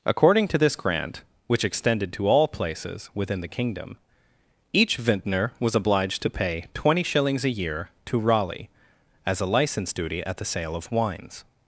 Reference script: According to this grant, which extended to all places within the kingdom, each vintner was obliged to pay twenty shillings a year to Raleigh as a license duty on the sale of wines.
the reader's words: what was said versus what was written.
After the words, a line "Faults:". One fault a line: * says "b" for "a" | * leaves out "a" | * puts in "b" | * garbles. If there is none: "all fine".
According to this grant, which extended to all places within the kingdom, each vintner was obliged to pay twenty shillings a year to Raleigh as a license duty at the sale of wines.
Faults:
* says "at" for "on"